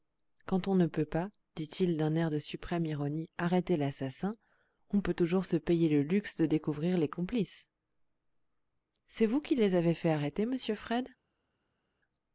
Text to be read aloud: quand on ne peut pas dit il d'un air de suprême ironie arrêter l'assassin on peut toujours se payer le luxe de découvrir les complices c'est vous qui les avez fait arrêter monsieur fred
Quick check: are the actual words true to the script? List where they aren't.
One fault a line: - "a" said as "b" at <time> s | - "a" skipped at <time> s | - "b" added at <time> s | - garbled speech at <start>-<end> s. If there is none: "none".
none